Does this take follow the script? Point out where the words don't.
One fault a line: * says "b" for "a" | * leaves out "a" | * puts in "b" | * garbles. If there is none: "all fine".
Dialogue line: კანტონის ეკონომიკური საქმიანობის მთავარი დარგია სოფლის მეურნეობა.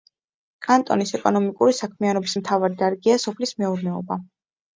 all fine